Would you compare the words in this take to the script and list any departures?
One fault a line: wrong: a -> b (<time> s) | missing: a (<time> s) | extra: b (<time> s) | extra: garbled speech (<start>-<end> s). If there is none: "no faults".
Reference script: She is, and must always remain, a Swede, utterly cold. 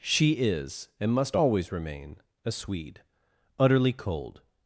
no faults